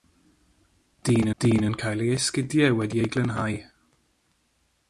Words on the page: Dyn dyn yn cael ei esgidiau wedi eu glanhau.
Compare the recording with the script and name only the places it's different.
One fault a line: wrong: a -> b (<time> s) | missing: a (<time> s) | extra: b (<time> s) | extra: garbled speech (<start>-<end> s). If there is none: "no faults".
no faults